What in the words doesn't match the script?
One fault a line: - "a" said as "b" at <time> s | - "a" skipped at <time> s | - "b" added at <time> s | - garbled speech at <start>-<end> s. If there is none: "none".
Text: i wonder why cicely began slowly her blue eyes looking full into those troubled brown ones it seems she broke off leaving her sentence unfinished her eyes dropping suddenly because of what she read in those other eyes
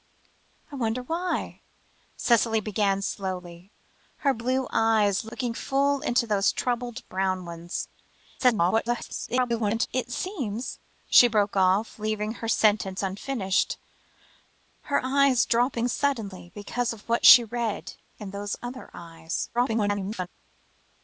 - garbled speech at 8.4-9.9 s
- garbled speech at 19.5-20.3 s